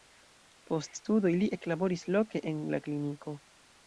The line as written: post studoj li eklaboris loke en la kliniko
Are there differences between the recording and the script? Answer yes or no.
no